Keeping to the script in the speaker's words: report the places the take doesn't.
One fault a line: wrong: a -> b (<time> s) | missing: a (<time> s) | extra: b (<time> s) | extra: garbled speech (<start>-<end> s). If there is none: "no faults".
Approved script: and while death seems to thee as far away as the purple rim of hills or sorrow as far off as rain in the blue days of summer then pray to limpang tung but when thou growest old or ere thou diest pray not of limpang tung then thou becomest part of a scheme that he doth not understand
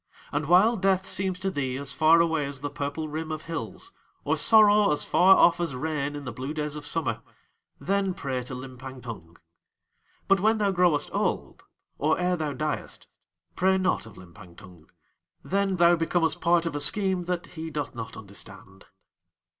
no faults